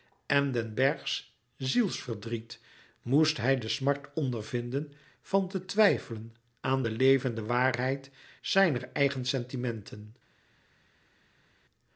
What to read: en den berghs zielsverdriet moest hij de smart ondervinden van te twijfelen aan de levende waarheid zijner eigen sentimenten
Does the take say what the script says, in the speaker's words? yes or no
yes